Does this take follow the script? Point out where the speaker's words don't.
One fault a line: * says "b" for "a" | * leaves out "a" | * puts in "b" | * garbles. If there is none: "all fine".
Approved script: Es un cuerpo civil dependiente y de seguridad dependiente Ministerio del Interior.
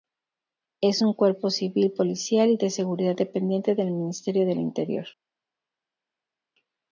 * says "policial" for "dependiente"
* puts in "del"